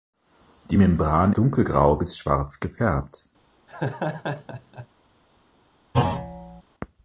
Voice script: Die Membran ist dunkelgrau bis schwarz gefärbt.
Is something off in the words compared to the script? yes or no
yes